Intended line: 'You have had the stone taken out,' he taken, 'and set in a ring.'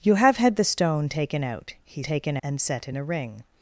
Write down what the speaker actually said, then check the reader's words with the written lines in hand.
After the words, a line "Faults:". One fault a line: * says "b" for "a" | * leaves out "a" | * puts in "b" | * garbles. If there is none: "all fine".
'You have had the stone taken out,' he taken, 'and set in a ring.'
Faults:
all fine